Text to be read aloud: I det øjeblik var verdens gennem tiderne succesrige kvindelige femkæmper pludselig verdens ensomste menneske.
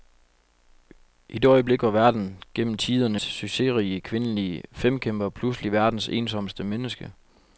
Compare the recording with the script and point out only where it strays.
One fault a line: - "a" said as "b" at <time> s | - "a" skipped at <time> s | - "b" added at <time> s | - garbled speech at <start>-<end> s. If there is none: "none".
none